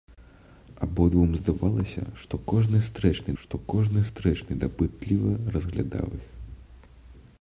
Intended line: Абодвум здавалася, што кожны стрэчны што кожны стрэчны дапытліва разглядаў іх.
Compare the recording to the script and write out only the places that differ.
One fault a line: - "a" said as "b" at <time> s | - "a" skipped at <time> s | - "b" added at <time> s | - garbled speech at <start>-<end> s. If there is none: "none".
none